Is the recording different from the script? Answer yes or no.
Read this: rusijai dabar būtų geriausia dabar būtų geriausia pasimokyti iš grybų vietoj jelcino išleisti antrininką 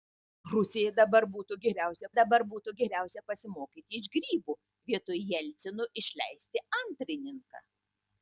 no